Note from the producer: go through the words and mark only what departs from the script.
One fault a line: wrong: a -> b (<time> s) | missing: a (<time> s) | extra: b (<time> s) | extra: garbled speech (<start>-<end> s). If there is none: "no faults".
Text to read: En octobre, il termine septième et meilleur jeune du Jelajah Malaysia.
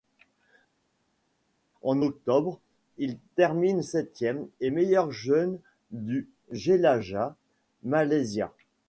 no faults